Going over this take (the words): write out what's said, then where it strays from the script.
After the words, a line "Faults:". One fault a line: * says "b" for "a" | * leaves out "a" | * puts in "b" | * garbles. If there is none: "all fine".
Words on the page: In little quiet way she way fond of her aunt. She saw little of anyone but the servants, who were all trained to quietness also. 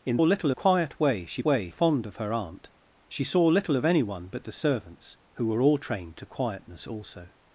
In little quiet way she way fond of her aunt. She saw little of anyone but the servants, who were all trained to quietness also.
Faults:
all fine